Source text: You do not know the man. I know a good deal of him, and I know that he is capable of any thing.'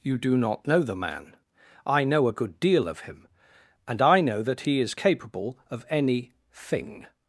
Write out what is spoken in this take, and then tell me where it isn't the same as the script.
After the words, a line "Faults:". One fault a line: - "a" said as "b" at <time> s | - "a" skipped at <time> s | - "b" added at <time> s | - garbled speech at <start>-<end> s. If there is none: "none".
You do not know the man. I know a good deal of him, and I know that he is capable of any thing.'
Faults:
none